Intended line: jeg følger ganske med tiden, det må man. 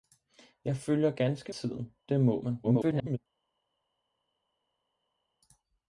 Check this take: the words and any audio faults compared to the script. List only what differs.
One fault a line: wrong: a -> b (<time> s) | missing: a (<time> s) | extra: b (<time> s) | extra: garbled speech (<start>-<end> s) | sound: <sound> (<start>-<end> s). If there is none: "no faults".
missing: med (1.5 s)
extra: garbled speech (2.6-3.2 s)